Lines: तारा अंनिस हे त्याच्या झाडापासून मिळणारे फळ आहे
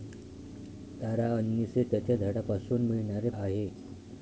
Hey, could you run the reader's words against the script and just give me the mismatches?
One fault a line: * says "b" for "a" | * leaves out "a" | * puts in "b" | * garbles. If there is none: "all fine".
* leaves out "फळ"